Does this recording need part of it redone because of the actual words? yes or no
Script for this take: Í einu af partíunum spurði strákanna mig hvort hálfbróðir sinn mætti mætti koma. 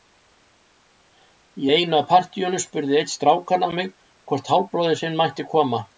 yes